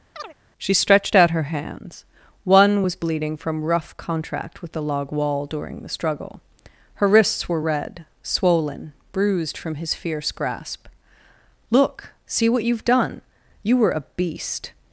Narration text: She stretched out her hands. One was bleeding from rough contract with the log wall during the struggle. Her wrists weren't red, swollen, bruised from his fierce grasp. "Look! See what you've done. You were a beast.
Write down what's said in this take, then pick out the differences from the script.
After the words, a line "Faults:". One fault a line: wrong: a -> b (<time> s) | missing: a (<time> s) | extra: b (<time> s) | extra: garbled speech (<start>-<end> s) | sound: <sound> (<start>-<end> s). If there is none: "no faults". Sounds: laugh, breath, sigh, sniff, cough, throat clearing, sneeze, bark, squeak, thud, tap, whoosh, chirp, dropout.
She stretched out her hands. One was bleeding from rough contract with the log wall during the struggle. Her wrists were red, swollen, bruised from his fierce grasp. "Look! See what you've done. You were a beast.
Faults:
sound: chirp (0.1-0.3 s)
wrong: weren't -> were (7.5 s)